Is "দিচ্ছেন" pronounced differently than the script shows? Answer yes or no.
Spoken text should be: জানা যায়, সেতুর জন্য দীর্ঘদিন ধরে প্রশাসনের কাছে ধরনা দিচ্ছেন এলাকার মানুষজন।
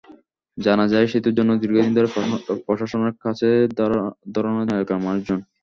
yes